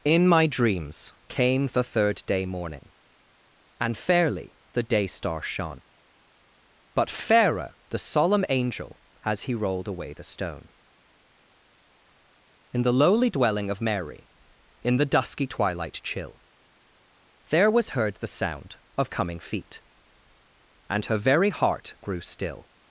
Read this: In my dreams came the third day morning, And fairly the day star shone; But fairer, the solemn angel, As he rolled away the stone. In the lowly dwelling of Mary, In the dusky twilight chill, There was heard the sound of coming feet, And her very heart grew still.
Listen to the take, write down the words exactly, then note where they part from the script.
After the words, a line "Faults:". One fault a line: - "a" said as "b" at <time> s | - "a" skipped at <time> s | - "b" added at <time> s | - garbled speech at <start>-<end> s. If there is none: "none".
In my dreams came the third day morning, And fairly the day star shone; But fairer, the solemn angel, As he rolled away the stone. In the lowly dwelling of Mary, In the dusky twilight chill, There was heard the sound of coming feet, And her very heart grew still.
Faults:
none